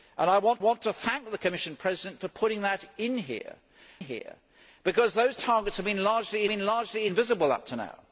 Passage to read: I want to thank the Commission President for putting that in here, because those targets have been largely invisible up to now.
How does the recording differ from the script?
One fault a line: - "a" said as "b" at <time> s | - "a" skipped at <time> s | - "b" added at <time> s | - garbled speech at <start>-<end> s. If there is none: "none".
- "want" added at 0.6 s
- "here" added at 4.0 s
- "been largely" added at 6.5 s